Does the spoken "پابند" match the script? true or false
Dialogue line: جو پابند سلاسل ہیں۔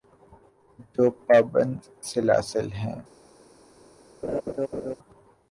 true